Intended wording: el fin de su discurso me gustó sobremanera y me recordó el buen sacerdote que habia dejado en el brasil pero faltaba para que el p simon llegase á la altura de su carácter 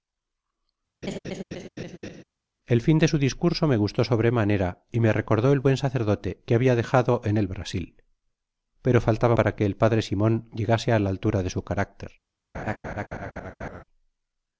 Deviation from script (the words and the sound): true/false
true